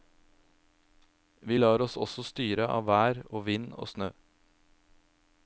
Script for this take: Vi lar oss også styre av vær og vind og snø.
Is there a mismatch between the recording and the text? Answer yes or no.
no